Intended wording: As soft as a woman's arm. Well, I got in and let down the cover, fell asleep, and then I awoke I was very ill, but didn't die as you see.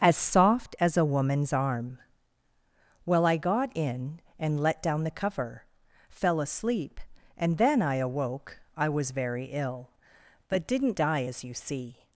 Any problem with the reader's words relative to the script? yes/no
no